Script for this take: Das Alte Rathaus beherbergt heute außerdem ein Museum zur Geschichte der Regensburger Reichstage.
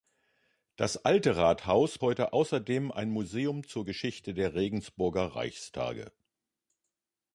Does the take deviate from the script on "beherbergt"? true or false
true